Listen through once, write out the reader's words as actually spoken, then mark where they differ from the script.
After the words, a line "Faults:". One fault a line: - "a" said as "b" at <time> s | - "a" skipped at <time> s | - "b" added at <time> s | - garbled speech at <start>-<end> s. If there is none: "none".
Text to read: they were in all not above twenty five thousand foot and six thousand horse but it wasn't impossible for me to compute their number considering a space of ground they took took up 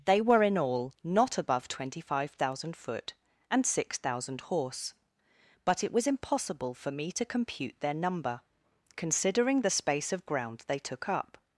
they were in all not above twenty five thousand foot and six thousand horse but it was impossible for me to compute their number considering the space of ground they took up
Faults:
- "wasn't" said as "was" at 5.9 s
- "a" said as "the" at 9.6 s
- "took" skipped at 11.1 s